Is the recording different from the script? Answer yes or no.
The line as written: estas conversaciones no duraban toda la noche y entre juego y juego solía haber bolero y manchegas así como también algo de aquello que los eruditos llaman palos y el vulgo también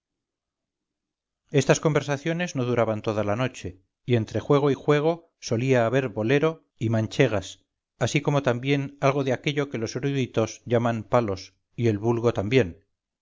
no